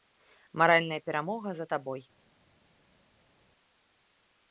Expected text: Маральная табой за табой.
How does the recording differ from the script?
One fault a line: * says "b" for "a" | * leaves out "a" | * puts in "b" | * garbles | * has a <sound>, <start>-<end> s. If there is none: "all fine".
* says "перамога" for "табой"